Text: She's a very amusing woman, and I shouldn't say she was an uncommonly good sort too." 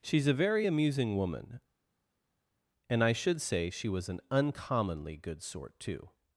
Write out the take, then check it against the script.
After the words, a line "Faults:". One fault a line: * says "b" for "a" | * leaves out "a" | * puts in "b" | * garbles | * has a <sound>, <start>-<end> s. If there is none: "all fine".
She's a very amusing woman, and I should say she was an uncommonly good sort too."
Faults:
* says "should" for "shouldn't"